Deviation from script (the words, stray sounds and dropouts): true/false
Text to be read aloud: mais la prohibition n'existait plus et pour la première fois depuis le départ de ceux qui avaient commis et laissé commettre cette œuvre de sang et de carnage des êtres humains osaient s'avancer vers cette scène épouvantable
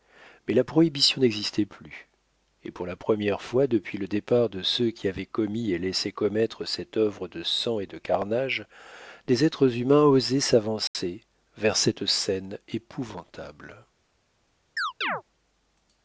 true